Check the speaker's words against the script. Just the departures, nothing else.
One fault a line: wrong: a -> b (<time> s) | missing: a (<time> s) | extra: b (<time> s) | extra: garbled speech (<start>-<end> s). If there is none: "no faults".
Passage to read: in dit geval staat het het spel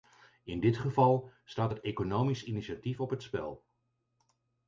extra: economisch initiatief op (1.8 s)